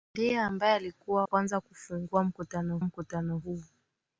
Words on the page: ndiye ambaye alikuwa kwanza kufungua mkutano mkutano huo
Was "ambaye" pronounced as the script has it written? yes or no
yes